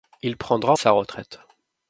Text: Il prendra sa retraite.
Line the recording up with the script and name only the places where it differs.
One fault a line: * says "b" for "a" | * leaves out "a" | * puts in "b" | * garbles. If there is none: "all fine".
all fine